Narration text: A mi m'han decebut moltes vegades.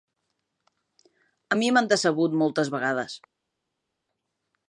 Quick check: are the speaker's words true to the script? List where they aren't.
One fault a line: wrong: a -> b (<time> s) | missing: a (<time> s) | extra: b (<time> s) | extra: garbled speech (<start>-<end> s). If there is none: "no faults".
no faults